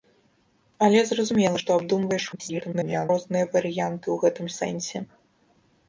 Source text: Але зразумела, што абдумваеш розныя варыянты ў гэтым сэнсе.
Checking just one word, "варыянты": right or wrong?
right